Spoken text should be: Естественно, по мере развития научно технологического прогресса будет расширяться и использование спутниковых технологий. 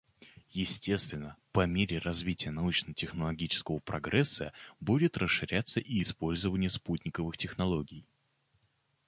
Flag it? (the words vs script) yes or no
no